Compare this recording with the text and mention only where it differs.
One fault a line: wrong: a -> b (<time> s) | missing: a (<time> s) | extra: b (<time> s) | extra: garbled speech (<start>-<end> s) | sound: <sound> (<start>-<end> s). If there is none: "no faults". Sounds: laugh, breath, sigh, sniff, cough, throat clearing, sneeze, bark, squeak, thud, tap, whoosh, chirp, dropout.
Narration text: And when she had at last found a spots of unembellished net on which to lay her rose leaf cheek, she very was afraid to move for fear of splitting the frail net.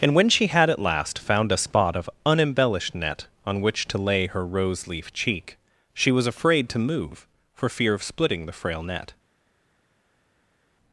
wrong: spots -> spot (1.6 s)
missing: very (6.1 s)